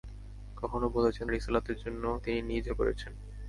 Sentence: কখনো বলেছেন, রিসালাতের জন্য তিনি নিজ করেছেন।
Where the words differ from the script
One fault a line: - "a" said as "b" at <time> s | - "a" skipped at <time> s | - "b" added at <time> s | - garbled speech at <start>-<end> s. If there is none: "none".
none